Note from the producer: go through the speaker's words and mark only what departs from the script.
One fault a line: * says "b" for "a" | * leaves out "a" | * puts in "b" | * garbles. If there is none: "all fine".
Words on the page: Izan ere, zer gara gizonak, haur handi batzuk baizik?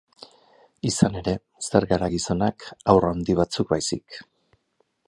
all fine